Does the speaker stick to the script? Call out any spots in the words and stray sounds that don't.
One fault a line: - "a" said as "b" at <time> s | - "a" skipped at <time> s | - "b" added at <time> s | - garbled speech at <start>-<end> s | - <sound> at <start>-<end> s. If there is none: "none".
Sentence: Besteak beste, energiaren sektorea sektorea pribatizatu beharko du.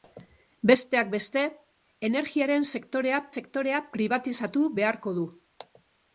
none